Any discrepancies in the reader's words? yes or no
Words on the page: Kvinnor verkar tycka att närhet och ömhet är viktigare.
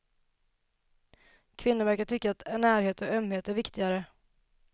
no